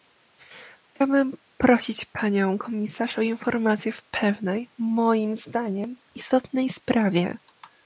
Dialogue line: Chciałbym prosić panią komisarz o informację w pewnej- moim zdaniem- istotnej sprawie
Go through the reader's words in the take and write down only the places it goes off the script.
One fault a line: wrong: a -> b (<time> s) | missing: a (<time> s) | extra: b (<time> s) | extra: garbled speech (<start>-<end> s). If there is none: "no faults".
no faults